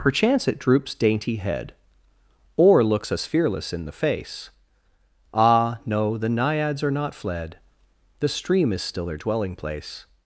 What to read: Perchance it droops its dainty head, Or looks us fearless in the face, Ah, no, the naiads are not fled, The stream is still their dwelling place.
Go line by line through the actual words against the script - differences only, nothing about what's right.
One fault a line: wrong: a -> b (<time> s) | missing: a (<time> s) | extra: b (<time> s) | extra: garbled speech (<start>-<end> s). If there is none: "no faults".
missing: its (0.9 s)